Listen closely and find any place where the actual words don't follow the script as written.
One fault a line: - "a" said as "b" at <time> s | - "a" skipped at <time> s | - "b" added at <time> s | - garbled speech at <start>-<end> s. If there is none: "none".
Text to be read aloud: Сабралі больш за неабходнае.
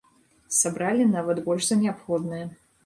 - "нават" added at 1.1 s